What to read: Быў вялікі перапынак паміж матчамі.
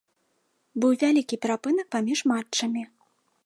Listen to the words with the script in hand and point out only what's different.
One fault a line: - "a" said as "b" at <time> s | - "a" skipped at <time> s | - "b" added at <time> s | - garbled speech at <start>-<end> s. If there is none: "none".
none